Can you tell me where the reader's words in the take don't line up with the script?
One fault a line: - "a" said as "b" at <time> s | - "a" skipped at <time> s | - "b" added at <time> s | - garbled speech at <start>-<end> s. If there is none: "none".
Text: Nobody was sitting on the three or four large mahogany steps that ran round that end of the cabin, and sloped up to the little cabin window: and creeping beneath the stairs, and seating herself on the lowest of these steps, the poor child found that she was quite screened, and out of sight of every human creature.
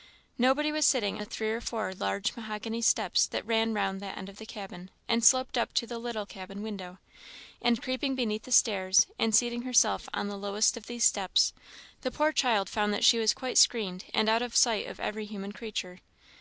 - "on" skipped at 1.2 s